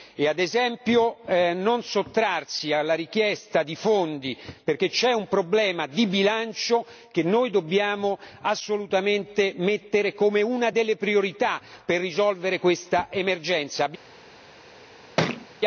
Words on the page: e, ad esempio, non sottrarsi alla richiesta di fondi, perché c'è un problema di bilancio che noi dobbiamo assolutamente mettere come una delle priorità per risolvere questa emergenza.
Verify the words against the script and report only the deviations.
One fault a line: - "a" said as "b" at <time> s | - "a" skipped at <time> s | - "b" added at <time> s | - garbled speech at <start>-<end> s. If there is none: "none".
none